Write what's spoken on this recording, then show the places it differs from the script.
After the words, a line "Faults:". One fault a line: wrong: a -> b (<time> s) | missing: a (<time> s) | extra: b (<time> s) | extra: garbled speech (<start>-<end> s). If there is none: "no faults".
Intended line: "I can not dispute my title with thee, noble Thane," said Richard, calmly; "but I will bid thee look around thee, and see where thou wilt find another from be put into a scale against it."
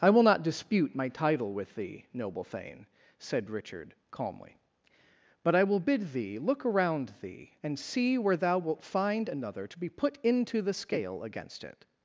"I will not dispute my title with thee, noble Thane," said Richard, calmly; "but I will bid thee look around thee, and see where thou wilt find another to be put into the scale against it."
Faults:
wrong: can -> will (0.1 s)
wrong: from -> to (9.6 s)
wrong: a -> the (10.6 s)